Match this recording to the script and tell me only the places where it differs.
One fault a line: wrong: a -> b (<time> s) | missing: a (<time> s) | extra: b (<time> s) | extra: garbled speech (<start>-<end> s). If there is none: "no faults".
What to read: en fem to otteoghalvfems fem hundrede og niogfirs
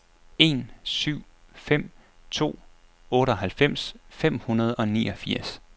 extra: syv (0.8 s)